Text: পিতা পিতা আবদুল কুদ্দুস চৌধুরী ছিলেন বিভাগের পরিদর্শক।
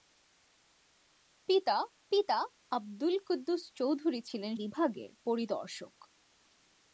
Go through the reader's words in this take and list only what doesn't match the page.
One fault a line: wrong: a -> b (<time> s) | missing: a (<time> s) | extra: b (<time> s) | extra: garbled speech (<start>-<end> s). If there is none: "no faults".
no faults